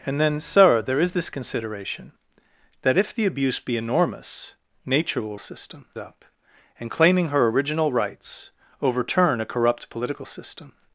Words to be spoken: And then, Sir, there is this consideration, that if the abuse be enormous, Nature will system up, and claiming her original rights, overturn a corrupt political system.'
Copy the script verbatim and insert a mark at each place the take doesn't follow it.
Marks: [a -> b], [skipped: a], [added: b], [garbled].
And then, Sir, there is this consideration, that if the abuse be enormous, Nature will system up, and claiming her original rights, overturn a corrupt political system.'